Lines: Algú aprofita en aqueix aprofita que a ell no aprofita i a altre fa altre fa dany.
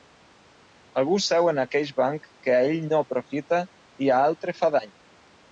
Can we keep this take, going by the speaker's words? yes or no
no